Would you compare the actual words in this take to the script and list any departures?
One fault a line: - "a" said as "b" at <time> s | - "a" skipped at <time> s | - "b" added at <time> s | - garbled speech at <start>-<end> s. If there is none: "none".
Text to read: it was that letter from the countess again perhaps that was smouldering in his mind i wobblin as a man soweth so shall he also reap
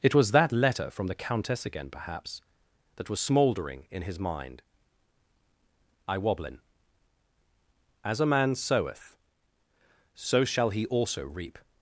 none